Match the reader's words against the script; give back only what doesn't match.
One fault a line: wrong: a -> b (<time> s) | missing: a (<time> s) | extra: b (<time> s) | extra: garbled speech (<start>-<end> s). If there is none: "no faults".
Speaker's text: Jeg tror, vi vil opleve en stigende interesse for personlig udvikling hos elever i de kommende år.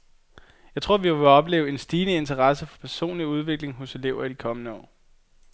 no faults